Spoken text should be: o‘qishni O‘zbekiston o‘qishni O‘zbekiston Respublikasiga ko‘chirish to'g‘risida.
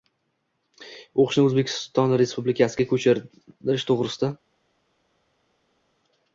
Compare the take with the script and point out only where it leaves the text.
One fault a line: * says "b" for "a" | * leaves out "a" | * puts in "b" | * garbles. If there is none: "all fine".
* leaves out "o‘qishni O‘zbekiston"